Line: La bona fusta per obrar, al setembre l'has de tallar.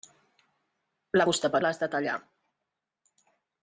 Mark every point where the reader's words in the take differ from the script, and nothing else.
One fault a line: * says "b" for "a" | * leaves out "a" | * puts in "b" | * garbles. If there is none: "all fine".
* leaves out "bona"
* leaves out "obrar al setembre"